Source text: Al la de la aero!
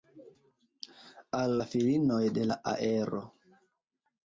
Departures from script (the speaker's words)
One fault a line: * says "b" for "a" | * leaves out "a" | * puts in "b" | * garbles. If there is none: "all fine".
* puts in "filinoj"